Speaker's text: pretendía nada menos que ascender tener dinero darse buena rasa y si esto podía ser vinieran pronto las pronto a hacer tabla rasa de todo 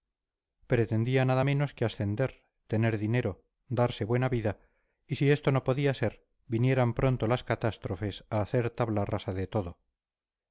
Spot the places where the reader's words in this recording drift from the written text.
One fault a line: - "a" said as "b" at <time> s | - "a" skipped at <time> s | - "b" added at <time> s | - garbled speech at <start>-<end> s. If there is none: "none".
- "rasa" said as "vida" at 4.3 s
- "no" added at 5.5 s
- "pronto" said as "catástrofes" at 7.4 s